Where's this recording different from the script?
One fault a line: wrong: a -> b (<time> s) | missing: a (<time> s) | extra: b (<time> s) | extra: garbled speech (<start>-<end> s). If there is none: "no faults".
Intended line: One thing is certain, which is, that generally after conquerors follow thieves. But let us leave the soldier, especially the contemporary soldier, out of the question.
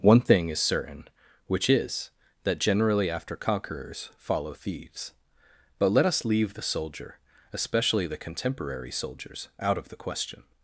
wrong: soldier -> soldiers (8.9 s)